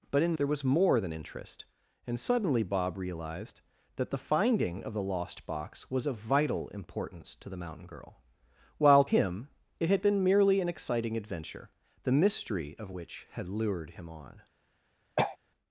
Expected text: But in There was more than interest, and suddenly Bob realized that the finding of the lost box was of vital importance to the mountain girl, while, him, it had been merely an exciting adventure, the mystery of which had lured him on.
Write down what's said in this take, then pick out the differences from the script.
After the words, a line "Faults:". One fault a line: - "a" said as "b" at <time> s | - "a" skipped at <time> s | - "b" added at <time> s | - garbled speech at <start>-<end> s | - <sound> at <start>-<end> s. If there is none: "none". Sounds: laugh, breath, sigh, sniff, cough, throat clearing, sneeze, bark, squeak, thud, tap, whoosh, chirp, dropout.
But in There was more than interest, and suddenly Bob realized that the finding of the lost box was of vital importance to the mountain girl, while, him, it had been merely an exciting adventure, the mystery of which had lured him on.
Faults:
- throat clearing at 15.2-15.4 s